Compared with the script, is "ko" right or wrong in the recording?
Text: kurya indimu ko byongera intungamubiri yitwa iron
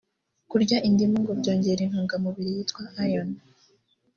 wrong